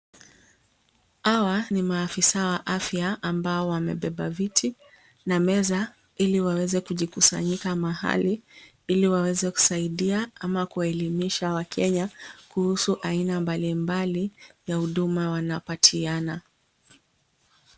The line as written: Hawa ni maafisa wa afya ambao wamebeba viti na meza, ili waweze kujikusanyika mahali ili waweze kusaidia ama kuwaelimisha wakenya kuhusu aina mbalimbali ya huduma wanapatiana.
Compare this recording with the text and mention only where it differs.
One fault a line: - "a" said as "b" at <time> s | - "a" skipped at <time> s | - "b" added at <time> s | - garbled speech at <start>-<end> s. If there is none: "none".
none